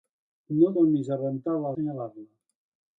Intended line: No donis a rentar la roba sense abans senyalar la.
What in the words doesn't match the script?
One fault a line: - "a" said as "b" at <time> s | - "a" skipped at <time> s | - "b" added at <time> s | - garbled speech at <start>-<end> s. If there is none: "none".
- "roba sense abans" skipped at 1.7 s